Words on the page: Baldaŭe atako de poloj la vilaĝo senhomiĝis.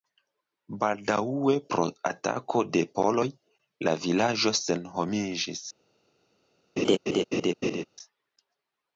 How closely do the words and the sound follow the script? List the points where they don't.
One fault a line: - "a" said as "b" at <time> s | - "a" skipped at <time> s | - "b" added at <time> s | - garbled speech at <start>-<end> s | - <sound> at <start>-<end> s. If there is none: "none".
- "pro" added at 1.7 s
- laugh at 6.8-7.8 s